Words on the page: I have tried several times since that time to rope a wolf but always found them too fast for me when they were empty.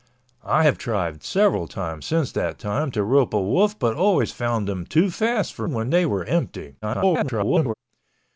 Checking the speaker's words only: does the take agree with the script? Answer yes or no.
no